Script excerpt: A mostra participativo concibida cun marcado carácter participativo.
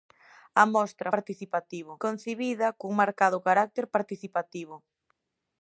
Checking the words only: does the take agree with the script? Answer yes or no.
yes